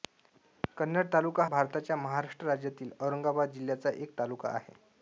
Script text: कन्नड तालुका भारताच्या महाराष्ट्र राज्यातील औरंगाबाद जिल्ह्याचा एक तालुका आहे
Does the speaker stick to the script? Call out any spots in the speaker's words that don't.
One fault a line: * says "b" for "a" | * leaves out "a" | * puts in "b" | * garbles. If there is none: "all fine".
all fine